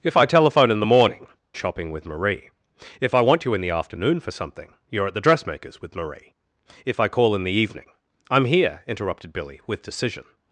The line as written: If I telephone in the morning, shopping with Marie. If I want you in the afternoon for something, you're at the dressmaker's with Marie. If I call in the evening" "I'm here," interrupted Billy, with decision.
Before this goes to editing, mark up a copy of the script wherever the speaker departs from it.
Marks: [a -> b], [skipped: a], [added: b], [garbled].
If I telephone in the morning, shopping with Marie. If I want you in the afternoon for something, you're at the dressmaker's with Marie. If I call in the evening" "I'm here," interrupted Billy, with decision.